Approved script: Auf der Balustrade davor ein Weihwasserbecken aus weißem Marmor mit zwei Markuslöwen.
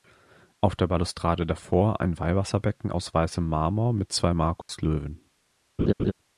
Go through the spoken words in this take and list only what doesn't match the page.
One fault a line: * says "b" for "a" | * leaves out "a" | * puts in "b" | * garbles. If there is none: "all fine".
all fine